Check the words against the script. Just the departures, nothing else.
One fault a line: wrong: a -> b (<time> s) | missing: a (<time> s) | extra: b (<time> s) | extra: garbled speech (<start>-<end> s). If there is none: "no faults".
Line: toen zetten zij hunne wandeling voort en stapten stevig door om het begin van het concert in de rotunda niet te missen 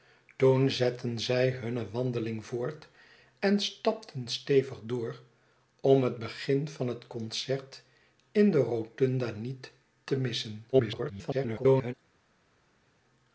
extra: garbled speech (10.7-11.9 s)